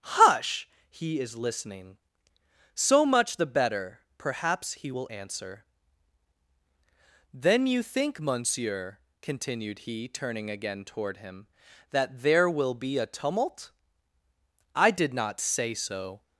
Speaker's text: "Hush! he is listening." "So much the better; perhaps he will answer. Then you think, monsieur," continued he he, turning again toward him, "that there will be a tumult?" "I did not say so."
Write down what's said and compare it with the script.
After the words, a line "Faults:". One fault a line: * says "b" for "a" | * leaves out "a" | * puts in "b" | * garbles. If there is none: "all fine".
"Hush! he is listening." "So much the better; perhaps he will answer. Then you think, monsieur," continued he, turning again toward him, "that there will be a tumult?" "I did not say so."
Faults:
* leaves out "he"